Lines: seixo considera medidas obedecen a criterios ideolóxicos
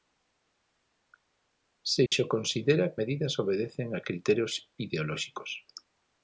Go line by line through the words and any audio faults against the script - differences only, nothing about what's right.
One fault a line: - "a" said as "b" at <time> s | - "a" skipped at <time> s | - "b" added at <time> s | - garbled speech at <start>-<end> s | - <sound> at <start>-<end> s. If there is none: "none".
- dropout at 2.1-2.1 s